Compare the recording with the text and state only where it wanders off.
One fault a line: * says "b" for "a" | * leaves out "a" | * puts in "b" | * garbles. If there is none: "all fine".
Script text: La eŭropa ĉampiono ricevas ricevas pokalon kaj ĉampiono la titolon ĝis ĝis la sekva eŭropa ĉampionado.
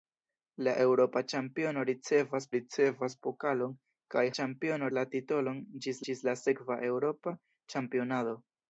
all fine